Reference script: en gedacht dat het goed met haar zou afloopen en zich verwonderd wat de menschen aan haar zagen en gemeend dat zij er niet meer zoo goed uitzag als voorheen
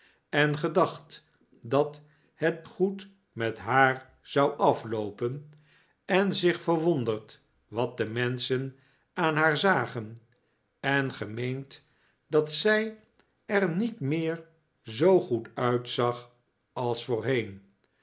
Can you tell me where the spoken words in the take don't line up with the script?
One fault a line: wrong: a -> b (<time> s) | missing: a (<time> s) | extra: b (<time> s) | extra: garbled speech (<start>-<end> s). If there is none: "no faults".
no faults